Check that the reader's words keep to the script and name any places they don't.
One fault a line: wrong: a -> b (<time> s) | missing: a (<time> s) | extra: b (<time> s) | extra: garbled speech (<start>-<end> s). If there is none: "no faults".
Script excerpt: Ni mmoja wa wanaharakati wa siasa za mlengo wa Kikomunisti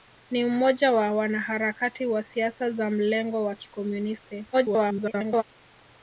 extra: garbled speech (4.5-5.4 s)